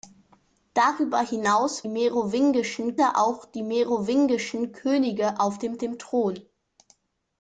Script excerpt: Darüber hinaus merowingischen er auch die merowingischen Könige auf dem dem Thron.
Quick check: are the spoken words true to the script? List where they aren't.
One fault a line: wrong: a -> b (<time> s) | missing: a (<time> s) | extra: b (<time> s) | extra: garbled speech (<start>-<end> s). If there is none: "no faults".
no faults